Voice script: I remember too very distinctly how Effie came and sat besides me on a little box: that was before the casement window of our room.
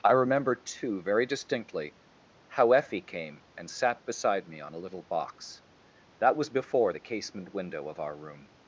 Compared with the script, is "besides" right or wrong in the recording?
wrong